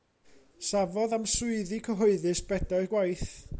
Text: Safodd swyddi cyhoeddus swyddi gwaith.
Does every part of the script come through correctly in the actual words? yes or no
no